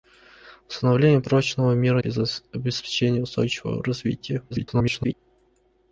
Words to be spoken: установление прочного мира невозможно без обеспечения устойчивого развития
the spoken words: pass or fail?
fail